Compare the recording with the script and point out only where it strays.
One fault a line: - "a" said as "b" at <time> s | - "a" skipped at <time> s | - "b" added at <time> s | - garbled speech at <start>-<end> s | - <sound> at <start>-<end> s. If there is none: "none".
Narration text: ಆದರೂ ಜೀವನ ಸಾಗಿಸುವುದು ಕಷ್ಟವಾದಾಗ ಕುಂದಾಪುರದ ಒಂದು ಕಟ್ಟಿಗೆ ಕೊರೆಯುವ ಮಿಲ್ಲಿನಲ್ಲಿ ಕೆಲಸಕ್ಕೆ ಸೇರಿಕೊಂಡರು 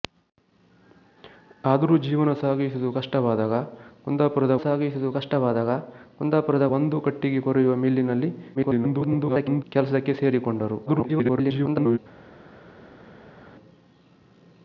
- "ಸಾಗಿಸುವುದು ಕಷ್ಟವಾದಾಗ ಕುಂದಾಪುರದ" added at 4.6 s
- garbled speech at 8.5-9.6 s
- garbled speech at 10.9-12.0 s